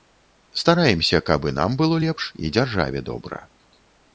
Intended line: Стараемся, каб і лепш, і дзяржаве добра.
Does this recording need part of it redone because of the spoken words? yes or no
yes